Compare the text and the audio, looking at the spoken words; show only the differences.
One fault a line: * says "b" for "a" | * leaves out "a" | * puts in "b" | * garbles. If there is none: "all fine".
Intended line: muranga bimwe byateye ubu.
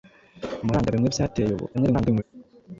* garbles